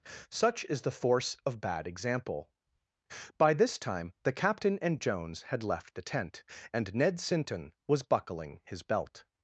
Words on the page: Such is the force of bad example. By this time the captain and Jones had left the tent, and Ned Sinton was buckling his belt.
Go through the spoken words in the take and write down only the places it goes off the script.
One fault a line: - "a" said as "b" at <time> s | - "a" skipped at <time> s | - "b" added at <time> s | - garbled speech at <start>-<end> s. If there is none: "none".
none